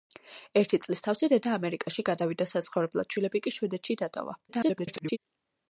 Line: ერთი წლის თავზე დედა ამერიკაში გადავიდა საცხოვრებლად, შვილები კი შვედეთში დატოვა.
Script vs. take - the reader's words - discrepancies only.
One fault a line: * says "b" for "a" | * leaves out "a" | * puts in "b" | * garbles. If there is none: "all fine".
* garbles